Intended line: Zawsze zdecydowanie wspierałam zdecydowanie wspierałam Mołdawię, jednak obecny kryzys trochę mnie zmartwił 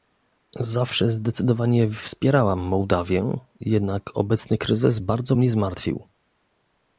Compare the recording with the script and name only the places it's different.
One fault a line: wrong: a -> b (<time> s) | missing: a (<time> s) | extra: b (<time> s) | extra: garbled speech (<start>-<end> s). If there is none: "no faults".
missing: zdecydowanie wspierałam (2.6 s)
wrong: trochę -> bardzo (5.0 s)